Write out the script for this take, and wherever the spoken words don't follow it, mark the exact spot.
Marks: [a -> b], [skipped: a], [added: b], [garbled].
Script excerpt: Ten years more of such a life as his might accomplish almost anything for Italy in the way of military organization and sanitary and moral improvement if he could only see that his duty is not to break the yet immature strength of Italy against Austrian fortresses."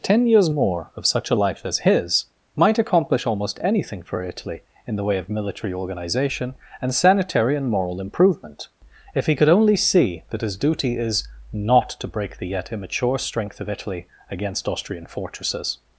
Ten years more of such a life as his might accomplish almost anything for Italy in the way of military organization and sanitary and moral improvement if he could only see that his duty is not to break the yet immature strength of Italy against Austrian fortresses."